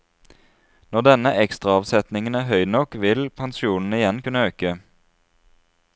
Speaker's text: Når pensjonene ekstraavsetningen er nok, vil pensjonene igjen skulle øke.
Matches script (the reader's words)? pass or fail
fail